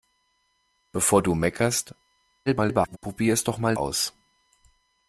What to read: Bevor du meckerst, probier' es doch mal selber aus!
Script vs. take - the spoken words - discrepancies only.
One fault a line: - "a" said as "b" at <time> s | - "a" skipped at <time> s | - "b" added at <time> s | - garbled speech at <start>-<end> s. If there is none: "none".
- garbled speech at 2.5-3.0 s
- "selber" skipped at 3.8 s